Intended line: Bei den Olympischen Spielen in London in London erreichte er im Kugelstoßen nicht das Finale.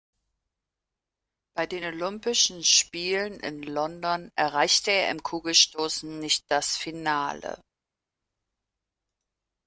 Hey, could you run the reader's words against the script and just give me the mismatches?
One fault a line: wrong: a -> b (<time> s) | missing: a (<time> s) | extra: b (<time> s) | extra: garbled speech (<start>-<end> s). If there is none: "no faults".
missing: in London (4.3 s)